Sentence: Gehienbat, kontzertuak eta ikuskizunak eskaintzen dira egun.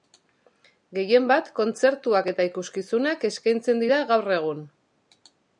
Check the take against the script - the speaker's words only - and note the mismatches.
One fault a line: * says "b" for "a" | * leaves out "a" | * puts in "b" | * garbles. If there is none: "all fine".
* puts in "gaur"